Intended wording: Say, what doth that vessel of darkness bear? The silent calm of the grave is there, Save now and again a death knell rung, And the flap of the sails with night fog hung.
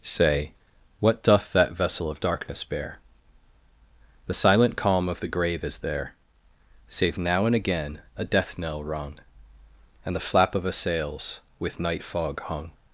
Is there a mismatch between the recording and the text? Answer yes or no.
yes